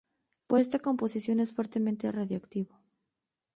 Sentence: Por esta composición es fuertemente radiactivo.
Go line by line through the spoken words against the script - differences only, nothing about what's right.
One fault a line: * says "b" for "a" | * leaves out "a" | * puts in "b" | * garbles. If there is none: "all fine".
all fine